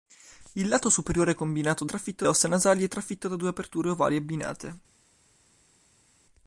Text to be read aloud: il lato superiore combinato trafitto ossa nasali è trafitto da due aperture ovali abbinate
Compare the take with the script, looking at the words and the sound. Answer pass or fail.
pass